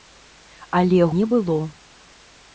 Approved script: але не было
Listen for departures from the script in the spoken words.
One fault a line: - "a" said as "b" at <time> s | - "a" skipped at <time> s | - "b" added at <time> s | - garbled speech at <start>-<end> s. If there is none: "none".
none